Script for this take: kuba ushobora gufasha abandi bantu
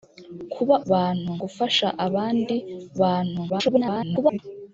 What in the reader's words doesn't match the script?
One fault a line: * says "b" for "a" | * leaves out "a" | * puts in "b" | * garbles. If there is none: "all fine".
* says "bantu" for "ushobora"
* garbles